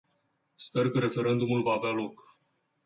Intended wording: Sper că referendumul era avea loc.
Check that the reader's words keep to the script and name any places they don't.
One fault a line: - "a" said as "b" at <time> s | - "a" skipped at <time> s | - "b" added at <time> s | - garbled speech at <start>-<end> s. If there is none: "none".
- "era" said as "va" at 1.6 s